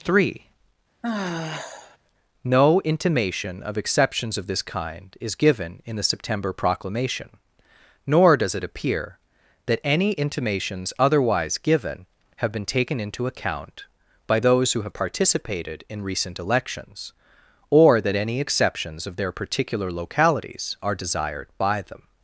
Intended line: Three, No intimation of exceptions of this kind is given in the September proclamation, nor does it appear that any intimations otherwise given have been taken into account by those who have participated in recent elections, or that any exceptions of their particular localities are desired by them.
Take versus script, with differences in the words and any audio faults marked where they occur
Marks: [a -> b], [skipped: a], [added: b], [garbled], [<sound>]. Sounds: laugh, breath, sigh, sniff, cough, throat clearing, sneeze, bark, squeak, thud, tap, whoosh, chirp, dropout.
Three, [sigh] No intimation of exceptions of this kind is given in the September proclamation, nor does it appear that any intimations otherwise given have been taken into account by those who have participated in recent elections, or that any exceptions of their particular localities are desired by them.